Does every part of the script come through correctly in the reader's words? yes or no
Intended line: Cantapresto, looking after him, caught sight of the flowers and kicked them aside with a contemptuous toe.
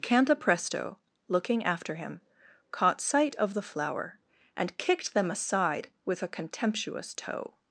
no